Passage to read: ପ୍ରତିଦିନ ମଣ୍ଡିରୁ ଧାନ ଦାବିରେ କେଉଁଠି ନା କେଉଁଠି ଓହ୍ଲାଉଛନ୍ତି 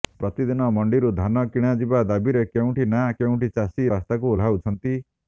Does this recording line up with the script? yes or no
no